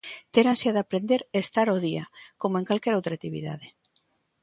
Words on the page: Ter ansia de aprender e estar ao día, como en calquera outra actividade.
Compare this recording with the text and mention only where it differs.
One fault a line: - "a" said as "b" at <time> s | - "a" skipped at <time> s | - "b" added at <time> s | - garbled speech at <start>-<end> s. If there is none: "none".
none